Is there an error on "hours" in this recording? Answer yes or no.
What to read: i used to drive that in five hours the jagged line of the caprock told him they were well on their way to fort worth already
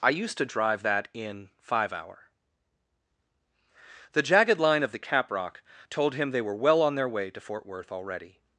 yes